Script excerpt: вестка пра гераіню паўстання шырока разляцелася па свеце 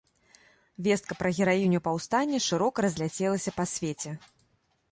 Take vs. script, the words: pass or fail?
pass